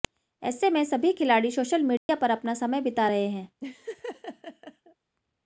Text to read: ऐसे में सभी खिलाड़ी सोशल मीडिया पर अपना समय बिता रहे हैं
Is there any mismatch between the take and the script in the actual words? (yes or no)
no